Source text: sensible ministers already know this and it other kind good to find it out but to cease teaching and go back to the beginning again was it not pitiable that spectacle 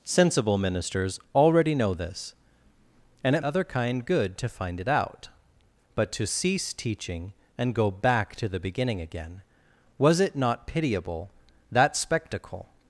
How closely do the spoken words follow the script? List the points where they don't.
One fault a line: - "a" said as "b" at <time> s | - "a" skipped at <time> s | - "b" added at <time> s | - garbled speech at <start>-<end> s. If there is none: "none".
none